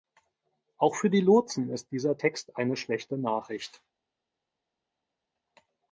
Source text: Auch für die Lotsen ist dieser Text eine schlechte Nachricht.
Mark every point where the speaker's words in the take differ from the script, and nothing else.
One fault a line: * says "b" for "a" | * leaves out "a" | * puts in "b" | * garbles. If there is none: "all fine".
all fine